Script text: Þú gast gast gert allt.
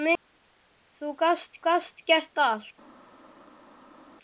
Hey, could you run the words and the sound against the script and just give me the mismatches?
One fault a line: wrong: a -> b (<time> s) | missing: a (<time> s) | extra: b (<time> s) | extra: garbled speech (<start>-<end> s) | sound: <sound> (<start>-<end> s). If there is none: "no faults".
no faults